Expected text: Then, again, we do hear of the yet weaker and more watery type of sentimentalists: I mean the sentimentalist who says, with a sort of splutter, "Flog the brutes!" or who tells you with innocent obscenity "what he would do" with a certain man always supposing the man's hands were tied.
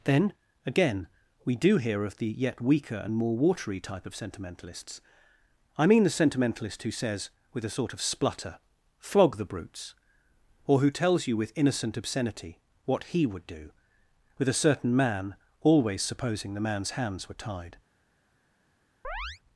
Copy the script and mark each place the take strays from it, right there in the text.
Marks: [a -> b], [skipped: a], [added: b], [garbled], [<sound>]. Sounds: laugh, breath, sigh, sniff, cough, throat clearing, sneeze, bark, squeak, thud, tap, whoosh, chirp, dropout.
Then, again, we do hear of the yet weaker and more watery type of sentimentalists: I mean the sentimentalist who says, with a sort of splutter, "Flog the brutes!" or who tells you with innocent obscenity "what he would do" with a certain man always supposing the man's hands were tied. [chirp]